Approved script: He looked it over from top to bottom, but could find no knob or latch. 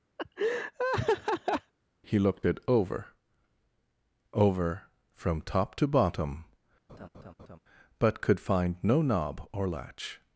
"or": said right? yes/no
yes